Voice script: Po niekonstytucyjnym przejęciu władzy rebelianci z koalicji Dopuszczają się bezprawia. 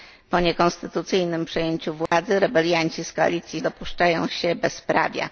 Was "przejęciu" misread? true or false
false